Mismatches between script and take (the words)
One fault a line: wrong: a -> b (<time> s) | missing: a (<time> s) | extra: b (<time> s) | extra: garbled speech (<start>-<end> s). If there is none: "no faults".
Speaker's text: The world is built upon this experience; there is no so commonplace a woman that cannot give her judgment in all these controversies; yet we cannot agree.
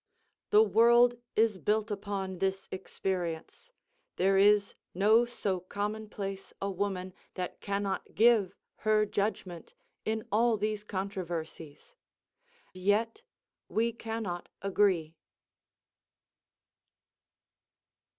no faults